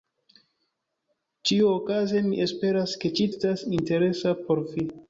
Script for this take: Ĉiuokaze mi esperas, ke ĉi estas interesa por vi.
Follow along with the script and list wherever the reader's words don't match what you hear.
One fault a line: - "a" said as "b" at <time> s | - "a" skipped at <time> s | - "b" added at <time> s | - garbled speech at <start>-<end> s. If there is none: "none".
none